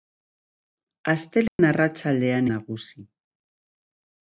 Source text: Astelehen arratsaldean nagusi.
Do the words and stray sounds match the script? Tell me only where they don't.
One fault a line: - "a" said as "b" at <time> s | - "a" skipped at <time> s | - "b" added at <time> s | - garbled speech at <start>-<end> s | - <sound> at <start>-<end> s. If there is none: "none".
- dropout at 1.5-1.6 s